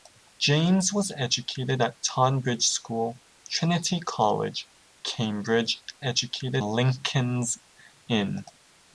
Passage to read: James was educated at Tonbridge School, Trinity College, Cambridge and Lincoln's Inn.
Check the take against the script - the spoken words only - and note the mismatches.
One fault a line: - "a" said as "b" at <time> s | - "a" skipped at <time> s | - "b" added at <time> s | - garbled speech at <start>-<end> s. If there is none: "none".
- "and" said as "educated" at 6.0 s